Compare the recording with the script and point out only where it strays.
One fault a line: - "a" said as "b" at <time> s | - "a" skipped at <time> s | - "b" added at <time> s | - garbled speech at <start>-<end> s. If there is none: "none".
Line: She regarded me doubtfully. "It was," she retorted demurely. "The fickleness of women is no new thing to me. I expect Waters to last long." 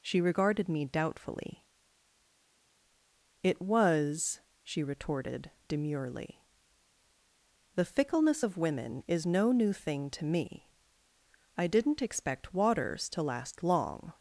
- "didn't" added at 11.7 s